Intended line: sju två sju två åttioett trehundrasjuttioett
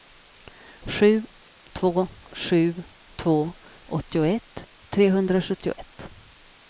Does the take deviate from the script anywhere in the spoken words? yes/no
no